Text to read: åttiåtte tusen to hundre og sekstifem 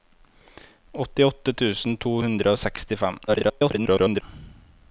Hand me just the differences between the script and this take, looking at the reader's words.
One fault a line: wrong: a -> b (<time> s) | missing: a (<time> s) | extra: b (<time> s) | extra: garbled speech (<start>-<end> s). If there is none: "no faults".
extra: garbled speech (3.3-4.2 s)